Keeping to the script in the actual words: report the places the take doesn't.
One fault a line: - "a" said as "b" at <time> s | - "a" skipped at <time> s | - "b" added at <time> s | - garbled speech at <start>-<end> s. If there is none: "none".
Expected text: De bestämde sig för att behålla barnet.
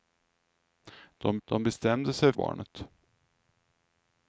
- "de" added at 1.4 s
- "för att behålla" skipped at 2.3 s